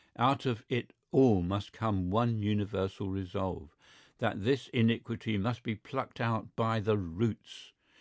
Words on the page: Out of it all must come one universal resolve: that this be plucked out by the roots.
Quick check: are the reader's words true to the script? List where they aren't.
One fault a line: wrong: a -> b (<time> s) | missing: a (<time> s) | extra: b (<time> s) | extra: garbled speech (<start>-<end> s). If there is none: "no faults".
extra: iniquity must (4.7 s)